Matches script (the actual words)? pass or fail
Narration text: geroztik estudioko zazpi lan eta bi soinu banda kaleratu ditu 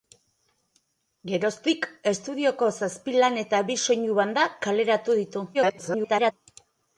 fail